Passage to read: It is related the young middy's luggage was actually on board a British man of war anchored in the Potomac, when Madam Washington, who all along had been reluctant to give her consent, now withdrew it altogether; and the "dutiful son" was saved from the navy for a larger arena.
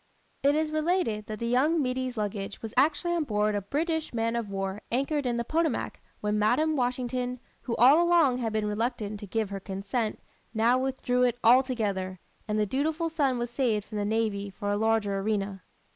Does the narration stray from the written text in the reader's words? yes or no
yes